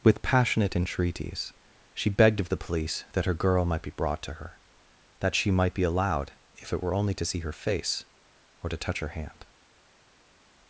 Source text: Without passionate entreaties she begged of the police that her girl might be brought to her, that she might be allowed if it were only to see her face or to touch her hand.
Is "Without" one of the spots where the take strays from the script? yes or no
yes